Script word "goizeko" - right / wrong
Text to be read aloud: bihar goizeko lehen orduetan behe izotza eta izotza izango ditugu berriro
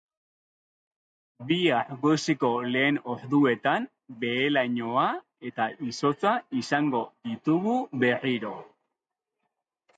right